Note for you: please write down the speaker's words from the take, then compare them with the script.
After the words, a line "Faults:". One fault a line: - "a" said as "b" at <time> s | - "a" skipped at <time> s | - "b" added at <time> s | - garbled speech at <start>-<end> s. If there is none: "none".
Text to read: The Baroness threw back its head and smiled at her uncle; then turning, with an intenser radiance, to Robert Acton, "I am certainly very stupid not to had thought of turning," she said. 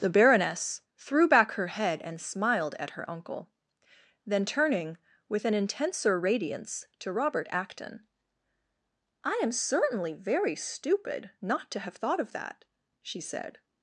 The Baroness threw back her head and smiled at her uncle; then turning, with an intenser radiance, to Robert Acton, "I am certainly very stupid not to have thought of that," she said.
Faults:
- "its" said as "her" at 1.5 s
- "had" said as "have" at 11.8 s
- "turning" said as "that" at 12.3 s